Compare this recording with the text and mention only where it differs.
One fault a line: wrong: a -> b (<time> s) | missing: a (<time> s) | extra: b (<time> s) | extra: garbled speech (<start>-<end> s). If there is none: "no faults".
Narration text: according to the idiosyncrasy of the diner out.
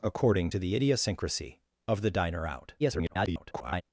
extra: garbled speech (2.8-3.8 s)